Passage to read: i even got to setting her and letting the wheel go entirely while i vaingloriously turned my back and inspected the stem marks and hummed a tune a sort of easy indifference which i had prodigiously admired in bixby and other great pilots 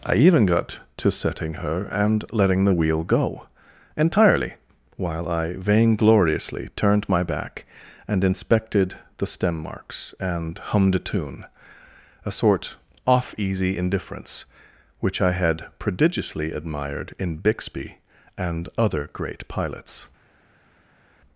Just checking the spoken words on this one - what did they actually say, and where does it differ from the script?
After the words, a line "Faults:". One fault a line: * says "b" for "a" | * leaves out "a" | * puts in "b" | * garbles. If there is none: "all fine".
i even got to setting her and letting the wheel go entirely while i vaingloriously turned my back and inspected the stem marks and hummed a tune a sort off easy indifference which i had prodigiously admired in bixby and other great pilots
Faults:
* says "off" for "of"